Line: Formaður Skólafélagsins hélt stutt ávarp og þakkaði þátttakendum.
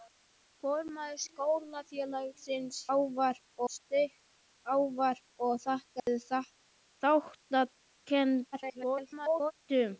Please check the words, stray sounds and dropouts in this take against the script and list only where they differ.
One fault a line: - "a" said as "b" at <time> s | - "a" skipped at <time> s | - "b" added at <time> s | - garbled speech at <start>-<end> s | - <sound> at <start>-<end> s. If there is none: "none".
- "hélt" said as "ávarp" at 3.0 s
- dropout at 6.0-6.1 s
- garbled speech at 8.5-9.5 s